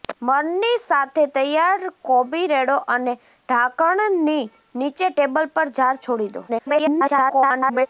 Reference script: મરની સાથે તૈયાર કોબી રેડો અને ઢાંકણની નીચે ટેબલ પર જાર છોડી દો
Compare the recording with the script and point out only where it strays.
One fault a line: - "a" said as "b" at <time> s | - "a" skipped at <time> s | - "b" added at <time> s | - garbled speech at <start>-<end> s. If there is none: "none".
- garbled speech at 6.5-7.9 s